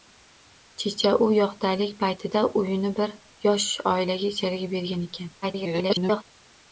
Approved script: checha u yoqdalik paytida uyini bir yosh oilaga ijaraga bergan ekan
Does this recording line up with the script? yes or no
no